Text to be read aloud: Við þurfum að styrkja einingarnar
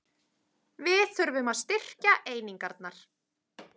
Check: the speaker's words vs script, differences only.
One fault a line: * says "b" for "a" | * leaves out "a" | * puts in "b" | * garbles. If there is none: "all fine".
all fine